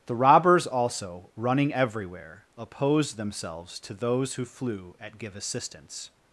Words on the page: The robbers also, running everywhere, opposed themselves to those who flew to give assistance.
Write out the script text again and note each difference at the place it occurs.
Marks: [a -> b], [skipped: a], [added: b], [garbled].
The robbers also, running everywhere, opposed themselves to those who flew [to -> at] give assistance.